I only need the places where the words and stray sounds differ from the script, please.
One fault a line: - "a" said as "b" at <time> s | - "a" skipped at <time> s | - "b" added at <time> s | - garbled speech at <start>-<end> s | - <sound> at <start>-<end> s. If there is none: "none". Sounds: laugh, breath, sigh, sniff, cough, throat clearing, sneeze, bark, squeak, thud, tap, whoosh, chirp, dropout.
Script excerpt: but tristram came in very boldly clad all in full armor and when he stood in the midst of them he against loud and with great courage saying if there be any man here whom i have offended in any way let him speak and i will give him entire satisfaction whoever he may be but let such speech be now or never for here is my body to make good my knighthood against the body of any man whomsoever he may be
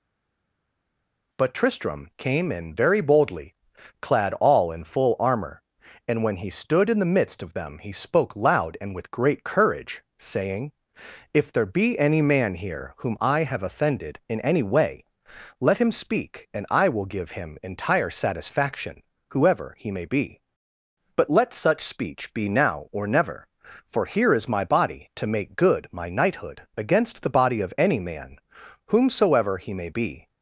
- "against" said as "spoke" at 7.9 s